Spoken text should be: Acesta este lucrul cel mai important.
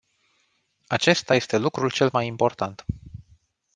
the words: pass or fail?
pass